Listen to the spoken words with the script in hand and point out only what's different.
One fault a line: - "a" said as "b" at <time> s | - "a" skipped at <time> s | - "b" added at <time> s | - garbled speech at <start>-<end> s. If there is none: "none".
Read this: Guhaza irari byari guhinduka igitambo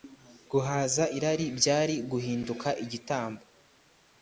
none